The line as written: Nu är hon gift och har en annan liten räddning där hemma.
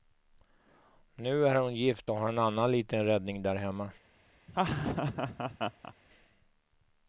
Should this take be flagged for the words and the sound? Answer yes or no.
yes